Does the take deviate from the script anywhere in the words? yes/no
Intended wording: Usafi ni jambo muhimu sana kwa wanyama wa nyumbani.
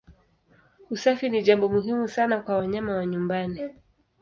no